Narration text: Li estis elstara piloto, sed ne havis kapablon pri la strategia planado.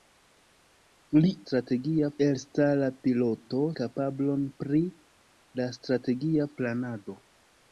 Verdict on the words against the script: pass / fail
fail